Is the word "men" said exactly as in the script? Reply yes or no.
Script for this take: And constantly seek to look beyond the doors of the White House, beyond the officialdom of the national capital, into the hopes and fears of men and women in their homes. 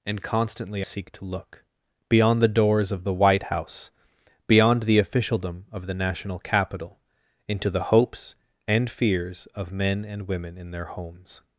yes